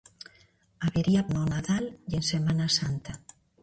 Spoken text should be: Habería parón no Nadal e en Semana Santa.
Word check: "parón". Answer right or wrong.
wrong